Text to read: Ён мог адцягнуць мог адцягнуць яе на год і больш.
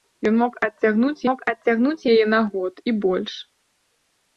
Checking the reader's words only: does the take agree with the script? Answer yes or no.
yes